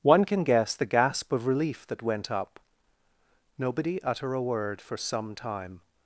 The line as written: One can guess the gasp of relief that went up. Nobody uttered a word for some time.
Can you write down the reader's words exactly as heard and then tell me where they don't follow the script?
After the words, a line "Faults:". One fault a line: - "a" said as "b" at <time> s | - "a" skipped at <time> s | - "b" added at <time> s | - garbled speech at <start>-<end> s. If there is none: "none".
One can guess the gasp of relief that went up. Nobody utter a word for some time.
Faults:
- "uttered" said as "utter" at 4.0 s